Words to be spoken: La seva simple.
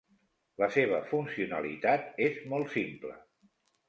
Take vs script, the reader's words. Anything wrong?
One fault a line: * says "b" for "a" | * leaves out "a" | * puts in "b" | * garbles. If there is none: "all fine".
* puts in "funcionalitat és molt"